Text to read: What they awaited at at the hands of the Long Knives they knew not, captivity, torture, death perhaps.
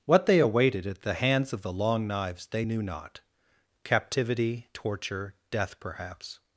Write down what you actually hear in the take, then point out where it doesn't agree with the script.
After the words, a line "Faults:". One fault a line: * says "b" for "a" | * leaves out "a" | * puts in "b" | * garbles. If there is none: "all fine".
What they awaited at the hands of the Long Knives they knew not, captivity, torture, death perhaps.
Faults:
* leaves out "at"